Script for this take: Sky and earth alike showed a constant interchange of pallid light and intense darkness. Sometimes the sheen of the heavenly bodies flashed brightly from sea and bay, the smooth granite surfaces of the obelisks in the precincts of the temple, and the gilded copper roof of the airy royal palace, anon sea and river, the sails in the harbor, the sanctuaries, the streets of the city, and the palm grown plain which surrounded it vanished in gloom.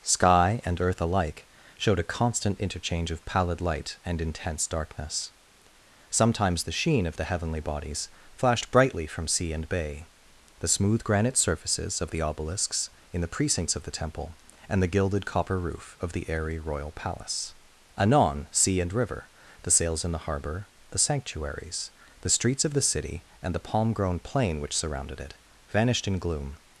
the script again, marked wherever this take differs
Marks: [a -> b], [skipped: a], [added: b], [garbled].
Sky and earth alike showed a constant interchange of pallid light and intense darkness. Sometimes the sheen of the heavenly bodies flashed brightly from sea and bay, the smooth granite surfaces of the obelisks in the precincts of the temple, and the gilded copper roof of the airy royal palace, anon sea and river, the sails in the harbor, the sanctuaries, the streets of the city, and the palm grown plain which surrounded it vanished in gloom.